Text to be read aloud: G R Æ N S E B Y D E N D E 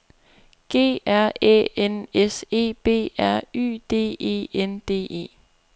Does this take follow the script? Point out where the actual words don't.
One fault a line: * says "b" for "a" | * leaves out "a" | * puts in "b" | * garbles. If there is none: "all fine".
* puts in "R"